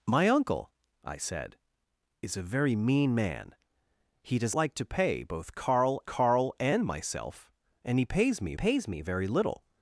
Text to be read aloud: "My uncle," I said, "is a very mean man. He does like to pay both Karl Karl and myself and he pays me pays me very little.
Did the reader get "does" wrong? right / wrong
right